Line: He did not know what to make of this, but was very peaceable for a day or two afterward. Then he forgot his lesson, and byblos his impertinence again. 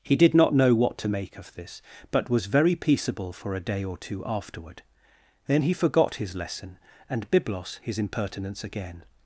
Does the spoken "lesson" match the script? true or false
true